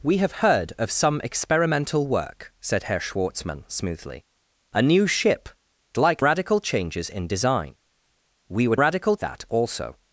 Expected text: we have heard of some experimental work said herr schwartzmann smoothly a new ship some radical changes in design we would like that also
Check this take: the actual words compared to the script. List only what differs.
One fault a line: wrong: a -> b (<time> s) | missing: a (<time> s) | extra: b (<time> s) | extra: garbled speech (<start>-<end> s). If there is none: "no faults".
wrong: some -> like (6.0 s)
wrong: like -> radical (8.8 s)